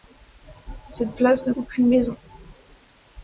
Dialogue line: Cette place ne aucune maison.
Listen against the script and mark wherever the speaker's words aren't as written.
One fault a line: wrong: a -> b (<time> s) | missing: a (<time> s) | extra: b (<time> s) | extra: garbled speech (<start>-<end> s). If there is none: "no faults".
no faults